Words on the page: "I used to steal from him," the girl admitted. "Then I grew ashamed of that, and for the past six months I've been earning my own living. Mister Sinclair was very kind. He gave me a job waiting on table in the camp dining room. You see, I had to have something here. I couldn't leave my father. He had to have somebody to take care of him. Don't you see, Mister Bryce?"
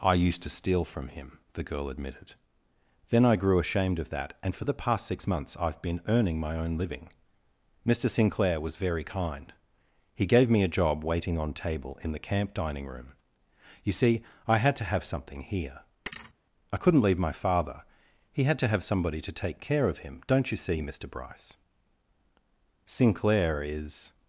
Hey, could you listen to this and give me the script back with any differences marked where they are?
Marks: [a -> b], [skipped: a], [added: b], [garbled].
"I used to steal from him," the girl admitted. "Then I grew ashamed of that, and for the past six months I've been earning my own living. Mister Sinclair was very kind. He gave me a job waiting on table in the camp dining room. You see, I had to have something here. I couldn't leave my father. He had to have somebody to take care of him. Don't you see, Mister Bryce?" [added: Sinclair is]